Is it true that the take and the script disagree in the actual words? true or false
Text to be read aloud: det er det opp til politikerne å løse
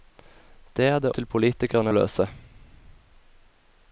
true